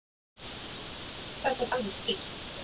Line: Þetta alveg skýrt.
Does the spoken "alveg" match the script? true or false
true